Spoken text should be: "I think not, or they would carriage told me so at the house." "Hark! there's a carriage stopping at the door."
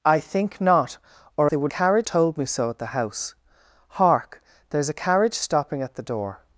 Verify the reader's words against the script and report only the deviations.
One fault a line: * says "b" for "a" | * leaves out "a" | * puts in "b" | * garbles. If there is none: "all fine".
all fine